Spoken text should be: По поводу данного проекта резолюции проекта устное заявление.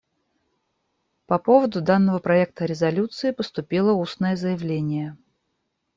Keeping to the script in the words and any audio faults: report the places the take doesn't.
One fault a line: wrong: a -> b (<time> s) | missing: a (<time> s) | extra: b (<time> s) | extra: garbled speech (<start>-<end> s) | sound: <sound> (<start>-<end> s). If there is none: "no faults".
wrong: проекта -> поступило (3.3 s)